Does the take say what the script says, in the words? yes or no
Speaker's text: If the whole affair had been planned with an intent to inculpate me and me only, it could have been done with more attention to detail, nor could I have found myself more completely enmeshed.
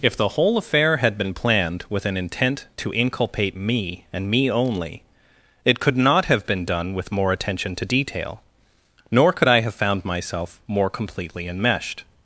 no